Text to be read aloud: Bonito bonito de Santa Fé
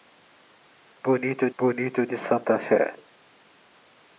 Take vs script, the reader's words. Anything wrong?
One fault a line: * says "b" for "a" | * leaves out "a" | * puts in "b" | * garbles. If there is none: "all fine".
all fine